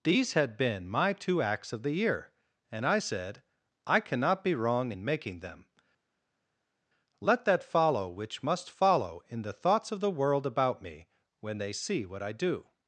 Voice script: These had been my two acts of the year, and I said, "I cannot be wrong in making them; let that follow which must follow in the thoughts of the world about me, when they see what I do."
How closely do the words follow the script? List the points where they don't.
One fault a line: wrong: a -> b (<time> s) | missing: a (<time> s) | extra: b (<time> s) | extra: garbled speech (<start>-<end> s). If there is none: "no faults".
no faults